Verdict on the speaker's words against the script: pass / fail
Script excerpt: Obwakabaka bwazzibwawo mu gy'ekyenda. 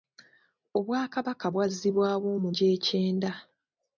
pass